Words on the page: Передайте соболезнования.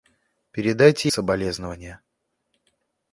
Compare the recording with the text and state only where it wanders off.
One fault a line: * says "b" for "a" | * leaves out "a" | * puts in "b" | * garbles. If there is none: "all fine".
all fine